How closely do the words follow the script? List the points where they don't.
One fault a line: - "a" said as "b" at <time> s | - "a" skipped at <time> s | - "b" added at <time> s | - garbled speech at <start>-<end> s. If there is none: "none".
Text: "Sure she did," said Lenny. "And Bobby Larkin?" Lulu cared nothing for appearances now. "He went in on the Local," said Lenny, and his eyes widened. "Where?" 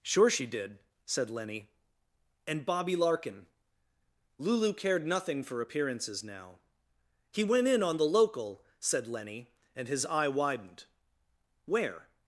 - "eyes" said as "eye" at 10.0 s